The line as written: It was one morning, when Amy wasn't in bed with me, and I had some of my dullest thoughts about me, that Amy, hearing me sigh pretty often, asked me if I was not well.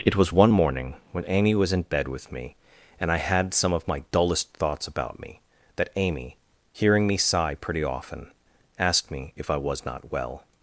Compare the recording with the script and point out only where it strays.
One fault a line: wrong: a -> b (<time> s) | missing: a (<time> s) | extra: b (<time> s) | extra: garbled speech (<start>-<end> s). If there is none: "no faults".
wrong: wasn't -> was (1.5 s)